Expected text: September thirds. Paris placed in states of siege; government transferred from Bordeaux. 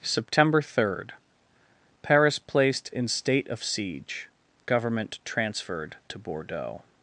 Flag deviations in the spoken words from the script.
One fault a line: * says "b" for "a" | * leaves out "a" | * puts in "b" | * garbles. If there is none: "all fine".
* says "third" for "thirds"
* says "state" for "states"
* says "to" for "from"